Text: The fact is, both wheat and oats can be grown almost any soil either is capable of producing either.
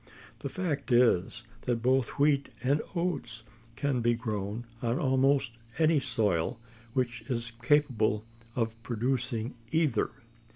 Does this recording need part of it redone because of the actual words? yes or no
yes